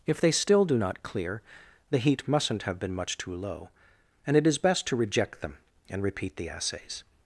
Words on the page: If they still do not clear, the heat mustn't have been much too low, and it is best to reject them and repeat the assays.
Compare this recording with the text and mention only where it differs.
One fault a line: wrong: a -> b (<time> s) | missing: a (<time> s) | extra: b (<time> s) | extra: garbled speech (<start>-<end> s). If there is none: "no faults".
no faults